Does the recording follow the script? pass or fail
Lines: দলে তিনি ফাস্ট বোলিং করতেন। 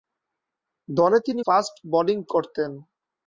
pass